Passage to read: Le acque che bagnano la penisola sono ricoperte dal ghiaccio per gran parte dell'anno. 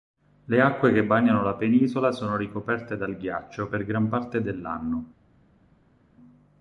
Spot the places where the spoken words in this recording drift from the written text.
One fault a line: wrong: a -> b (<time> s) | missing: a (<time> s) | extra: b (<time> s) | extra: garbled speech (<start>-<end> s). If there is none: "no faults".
no faults